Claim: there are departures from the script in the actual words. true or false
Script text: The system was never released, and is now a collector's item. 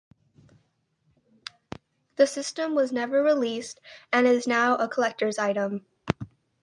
false